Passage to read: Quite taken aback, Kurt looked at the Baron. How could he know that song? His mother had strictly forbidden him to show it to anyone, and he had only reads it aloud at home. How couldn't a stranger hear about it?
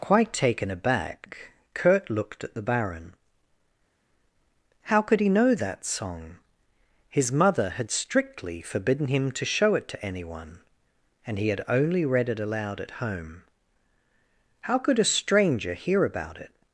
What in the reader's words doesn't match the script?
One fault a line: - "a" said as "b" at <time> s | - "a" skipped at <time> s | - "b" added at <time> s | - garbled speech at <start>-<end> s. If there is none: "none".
- "reads" said as "read" at 12.1 s
- "couldn't" said as "could" at 14.8 s